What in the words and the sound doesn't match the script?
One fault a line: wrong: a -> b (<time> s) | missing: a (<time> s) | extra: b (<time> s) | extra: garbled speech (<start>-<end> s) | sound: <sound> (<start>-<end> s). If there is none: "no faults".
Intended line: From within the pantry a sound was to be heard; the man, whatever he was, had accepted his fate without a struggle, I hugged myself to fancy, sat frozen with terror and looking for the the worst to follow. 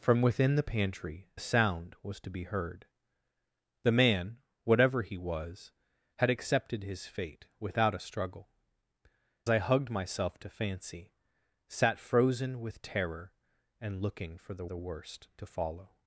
no faults